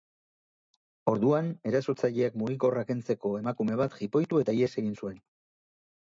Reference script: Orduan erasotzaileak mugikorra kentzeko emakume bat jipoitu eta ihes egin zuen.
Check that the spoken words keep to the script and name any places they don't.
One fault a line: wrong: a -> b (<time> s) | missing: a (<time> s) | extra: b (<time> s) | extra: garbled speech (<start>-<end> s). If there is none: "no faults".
no faults